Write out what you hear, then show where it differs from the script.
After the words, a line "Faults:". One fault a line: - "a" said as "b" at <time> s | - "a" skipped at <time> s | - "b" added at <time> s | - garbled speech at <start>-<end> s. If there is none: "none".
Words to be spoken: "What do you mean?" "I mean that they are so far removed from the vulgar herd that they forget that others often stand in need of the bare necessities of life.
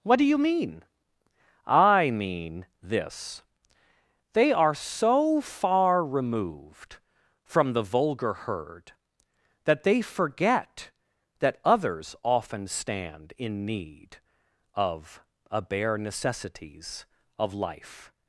"What do you mean?" "I mean this they are so far removed from the vulgar herd that they forget that others often stand in need of a bare necessities of life.
Faults:
- "that" said as "this" at 2.8 s
- "the" said as "a" at 15.5 s